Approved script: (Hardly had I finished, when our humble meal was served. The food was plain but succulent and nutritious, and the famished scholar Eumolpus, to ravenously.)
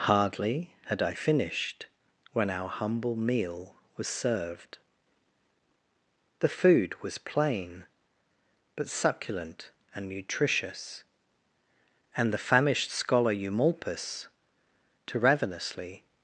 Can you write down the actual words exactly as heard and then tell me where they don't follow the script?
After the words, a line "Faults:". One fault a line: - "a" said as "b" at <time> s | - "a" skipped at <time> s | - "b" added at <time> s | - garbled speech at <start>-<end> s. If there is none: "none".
(Hardly had I finished, when our humble meal was served. The food was plain but succulent and nutritious, and the famished scholar Eumolpus, to ravenously.)
Faults:
none